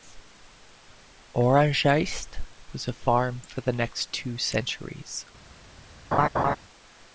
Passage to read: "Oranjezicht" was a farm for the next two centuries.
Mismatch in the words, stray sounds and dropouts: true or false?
true